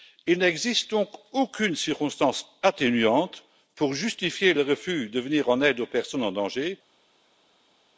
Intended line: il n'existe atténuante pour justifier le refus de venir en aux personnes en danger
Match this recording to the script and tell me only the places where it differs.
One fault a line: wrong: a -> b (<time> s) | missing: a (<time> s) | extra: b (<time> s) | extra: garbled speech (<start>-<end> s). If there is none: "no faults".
extra: donc aucune circonstance (0.9 s)
extra: aide (5.6 s)